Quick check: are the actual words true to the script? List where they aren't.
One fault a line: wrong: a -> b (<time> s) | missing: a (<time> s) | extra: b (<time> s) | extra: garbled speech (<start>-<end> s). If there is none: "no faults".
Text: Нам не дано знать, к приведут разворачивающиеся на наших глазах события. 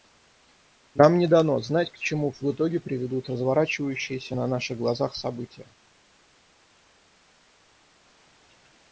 extra: чему в итоге (2.0 s)